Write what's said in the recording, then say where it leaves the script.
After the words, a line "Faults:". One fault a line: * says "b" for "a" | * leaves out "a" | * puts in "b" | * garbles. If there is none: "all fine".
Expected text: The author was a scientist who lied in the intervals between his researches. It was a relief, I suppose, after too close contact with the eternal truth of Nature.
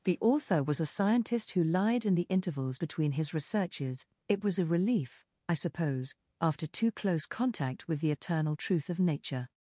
The author was a scientist who lied in the intervals between his researches. It was a relief, I suppose, after too close contact with the eternal truth of Nature.
Faults:
all fine